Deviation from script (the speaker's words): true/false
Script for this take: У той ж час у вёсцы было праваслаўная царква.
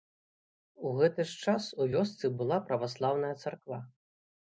true